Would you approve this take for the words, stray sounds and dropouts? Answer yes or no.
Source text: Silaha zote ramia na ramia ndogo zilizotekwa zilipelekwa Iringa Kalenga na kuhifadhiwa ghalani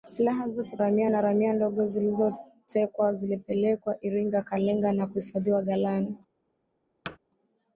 no